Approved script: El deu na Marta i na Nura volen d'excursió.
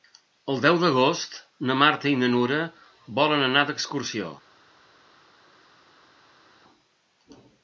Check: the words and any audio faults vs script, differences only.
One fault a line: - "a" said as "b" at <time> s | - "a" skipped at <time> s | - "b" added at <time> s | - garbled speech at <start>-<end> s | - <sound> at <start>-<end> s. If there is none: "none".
- "d'agost" added at 0.8 s
- "anar" added at 3.5 s